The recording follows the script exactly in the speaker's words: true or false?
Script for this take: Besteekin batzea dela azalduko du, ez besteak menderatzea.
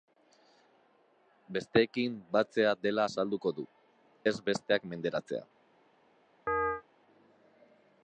true